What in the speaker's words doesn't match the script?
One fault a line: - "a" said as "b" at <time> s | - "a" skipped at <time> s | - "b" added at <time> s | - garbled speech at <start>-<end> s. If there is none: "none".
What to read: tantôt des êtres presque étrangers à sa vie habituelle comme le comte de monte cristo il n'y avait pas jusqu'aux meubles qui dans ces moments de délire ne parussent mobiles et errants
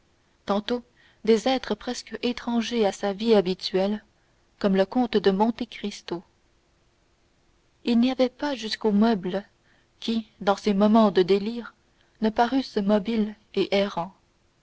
none